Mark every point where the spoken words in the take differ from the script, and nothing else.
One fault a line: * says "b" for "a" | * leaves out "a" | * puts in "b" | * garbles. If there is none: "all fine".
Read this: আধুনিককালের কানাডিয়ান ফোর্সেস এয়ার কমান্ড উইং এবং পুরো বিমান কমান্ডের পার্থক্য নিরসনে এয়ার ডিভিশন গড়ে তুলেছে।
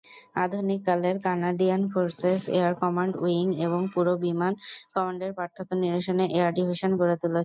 all fine